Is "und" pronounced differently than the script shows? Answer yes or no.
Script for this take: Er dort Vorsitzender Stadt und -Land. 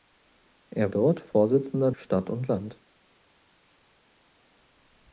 no